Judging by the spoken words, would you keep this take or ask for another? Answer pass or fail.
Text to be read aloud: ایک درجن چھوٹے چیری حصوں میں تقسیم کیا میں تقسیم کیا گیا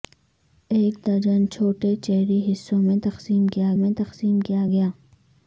pass